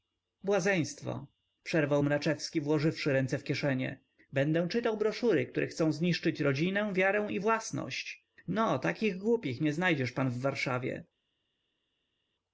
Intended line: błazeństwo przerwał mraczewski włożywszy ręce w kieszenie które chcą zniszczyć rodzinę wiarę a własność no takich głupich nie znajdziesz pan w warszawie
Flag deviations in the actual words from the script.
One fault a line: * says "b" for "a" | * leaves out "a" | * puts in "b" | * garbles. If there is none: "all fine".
* puts in "będę czytał broszury"
* says "i" for "a"